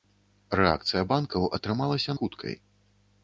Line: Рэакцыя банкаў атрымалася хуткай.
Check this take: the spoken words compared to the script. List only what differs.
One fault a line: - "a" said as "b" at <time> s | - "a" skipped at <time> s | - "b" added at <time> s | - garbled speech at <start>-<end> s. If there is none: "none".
none